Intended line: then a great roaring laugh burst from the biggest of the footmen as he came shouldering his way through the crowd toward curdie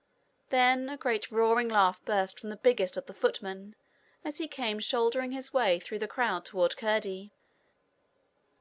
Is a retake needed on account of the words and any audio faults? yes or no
no